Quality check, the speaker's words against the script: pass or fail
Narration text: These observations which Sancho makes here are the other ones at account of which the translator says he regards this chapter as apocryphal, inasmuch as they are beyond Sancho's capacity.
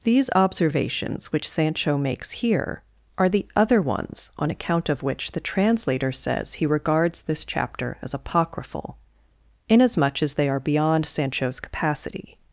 fail